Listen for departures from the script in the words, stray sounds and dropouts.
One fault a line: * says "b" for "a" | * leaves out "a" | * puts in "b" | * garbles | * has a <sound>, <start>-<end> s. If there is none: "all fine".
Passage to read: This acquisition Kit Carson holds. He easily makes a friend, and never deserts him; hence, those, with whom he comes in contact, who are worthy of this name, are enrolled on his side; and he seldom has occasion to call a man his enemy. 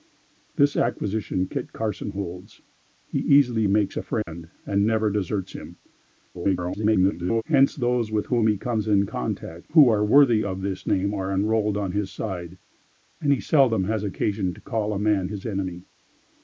* has a dropout, 4.2-4.3 s
* garbles